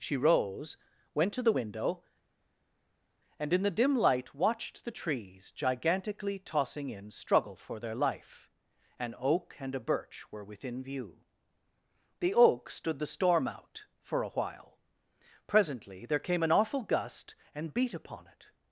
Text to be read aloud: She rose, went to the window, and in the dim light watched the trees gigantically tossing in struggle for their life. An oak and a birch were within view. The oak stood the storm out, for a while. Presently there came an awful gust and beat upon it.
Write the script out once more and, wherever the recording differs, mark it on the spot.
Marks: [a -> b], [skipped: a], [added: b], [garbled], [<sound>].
She rose, went to the window, and in the dim light watched the trees gigantically tossing in struggle for their life. An oak and a birch were within view. The oak stood the storm out, for a while. Presently there came an awful gust and beat upon it.